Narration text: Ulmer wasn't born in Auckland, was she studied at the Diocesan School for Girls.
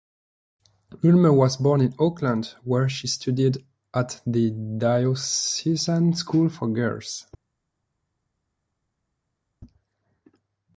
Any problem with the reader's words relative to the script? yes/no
yes